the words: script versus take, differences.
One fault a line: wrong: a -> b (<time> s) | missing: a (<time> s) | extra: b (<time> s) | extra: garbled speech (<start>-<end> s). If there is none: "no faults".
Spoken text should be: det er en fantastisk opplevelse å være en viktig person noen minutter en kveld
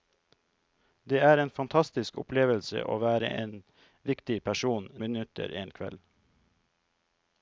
missing: noen (4.9 s)